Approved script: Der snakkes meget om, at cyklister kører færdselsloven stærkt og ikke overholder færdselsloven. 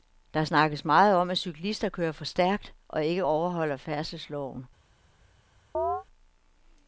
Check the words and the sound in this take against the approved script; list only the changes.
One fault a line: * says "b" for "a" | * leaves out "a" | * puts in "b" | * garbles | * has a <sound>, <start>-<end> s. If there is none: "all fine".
* says "for" for "færdselsloven"
* has a chirp, 5.7-6.0 s